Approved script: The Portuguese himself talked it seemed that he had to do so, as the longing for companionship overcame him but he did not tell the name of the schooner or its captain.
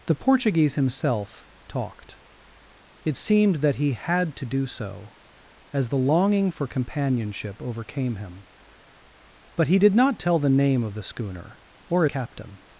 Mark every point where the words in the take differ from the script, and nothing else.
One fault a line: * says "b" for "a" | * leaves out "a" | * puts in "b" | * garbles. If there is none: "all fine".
* leaves out "its"